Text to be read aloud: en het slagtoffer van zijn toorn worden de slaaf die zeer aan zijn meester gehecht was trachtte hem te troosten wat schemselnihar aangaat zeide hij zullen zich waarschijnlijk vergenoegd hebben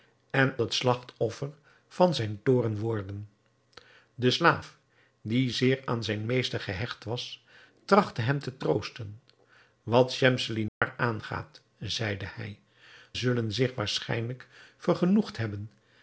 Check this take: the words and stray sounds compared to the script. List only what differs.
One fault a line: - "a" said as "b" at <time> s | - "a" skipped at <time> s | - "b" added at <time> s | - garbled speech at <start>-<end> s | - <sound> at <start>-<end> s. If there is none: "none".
- dropout at 10.7-10.8 s